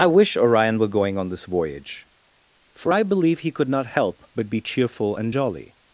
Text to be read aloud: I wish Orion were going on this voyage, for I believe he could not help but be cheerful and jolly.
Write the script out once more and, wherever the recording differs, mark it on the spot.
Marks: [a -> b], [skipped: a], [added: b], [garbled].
I wish Orion were going on this voyage, for I believe he could not help but be cheerful and jolly.